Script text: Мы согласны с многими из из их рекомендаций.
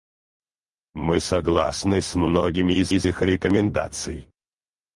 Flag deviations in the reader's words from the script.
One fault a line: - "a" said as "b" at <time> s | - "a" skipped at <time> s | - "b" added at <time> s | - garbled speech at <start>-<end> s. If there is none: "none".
none